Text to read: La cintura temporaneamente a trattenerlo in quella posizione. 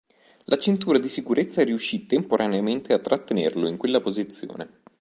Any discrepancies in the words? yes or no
yes